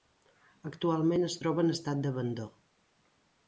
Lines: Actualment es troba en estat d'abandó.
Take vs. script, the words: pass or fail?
pass